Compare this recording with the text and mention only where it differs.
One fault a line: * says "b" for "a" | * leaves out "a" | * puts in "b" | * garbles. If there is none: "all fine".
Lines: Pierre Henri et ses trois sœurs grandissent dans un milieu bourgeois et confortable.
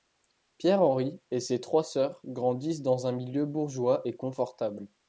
all fine